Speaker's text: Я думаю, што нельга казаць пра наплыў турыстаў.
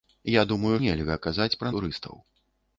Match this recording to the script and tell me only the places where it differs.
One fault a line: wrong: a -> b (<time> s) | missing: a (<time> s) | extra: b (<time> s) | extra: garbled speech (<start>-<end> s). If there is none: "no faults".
missing: што (0.7 s)
missing: наплыў (1.7 s)